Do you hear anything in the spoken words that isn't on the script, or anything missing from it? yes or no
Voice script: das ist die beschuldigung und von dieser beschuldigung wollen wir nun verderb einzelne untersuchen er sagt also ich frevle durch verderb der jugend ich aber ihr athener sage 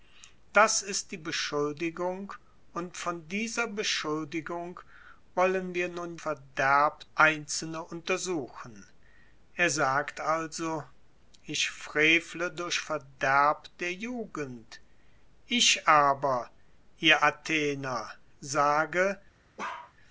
no